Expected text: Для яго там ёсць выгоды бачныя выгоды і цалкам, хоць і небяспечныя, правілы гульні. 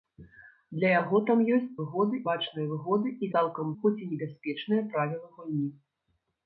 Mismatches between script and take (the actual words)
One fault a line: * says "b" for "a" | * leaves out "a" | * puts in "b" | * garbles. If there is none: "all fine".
all fine